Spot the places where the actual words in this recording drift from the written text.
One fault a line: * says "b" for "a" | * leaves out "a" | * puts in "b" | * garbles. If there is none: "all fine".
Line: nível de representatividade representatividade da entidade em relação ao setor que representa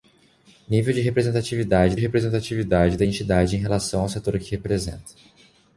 all fine